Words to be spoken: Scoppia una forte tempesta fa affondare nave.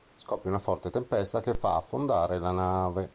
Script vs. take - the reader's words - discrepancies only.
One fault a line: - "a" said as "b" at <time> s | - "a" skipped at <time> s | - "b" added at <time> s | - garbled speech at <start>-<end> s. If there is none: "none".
- "che" added at 1.4 s
- "la" added at 2.4 s